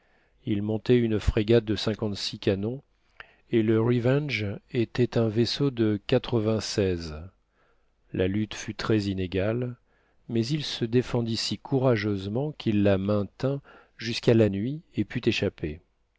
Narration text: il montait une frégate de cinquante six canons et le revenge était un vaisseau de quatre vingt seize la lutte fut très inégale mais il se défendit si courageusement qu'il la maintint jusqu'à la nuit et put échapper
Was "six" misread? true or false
false